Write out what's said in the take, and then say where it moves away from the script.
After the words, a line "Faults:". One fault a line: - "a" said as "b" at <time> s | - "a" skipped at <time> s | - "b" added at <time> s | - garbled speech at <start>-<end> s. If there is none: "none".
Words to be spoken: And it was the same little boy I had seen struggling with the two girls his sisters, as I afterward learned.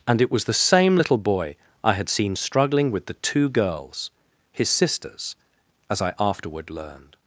And it was the same little boy I had seen struggling with the two girls his sisters, as I afterward learned.
Faults:
none